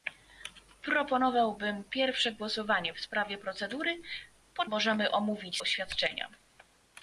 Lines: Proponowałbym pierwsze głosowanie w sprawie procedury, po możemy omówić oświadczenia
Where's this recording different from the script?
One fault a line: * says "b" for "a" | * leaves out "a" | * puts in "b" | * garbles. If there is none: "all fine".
all fine